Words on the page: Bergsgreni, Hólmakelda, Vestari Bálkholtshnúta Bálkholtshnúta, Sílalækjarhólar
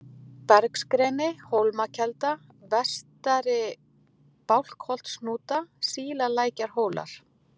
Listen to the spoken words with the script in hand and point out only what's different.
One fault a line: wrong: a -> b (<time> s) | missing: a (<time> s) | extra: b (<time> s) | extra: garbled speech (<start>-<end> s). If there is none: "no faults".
missing: Bálkholtshnúta (5.6 s)